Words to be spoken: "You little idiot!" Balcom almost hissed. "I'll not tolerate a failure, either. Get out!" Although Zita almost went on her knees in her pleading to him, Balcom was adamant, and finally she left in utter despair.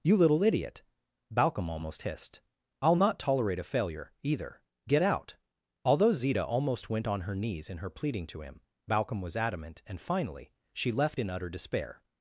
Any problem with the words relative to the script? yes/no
no